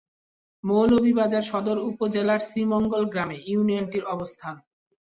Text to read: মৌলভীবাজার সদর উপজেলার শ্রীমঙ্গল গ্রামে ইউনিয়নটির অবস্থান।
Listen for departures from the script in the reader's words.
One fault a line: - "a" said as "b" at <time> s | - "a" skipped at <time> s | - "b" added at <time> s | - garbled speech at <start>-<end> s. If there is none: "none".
none